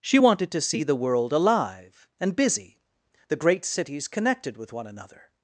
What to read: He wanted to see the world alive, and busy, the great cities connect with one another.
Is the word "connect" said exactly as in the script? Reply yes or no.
no